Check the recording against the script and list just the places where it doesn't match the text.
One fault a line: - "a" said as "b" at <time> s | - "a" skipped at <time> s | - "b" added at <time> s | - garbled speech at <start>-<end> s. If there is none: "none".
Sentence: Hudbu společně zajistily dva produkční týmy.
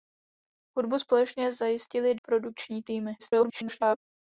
- "dva" skipped at 2.1 s
- garbled speech at 3.2-4.0 s